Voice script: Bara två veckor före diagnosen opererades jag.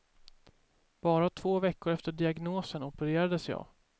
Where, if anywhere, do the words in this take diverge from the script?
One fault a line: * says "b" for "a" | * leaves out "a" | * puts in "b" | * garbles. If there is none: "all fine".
* says "efter" for "före"